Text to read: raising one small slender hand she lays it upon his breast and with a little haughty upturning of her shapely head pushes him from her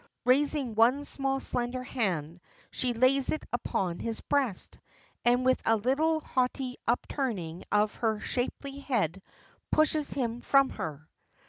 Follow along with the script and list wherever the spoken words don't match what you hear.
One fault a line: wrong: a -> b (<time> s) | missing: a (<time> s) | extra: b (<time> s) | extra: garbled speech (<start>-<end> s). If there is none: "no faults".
no faults